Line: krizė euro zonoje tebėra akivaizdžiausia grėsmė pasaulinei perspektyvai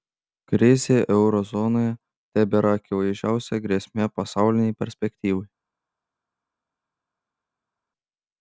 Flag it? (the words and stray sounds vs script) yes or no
no